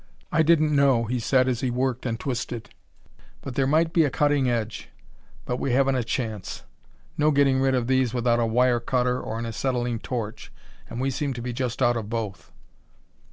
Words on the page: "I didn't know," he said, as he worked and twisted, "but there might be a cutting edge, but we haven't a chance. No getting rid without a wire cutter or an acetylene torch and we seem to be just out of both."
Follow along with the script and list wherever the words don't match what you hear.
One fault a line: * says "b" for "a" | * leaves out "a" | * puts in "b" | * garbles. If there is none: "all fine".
* puts in "of these"